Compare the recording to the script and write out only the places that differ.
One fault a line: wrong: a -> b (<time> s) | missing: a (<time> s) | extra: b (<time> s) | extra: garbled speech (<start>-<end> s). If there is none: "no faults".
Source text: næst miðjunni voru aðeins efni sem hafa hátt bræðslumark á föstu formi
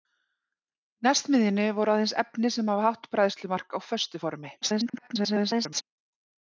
extra: garbled speech (4.6-5.8 s)